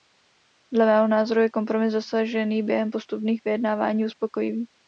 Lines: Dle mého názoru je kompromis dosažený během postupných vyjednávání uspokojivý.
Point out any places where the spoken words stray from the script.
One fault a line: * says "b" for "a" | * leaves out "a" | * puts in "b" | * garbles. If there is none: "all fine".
all fine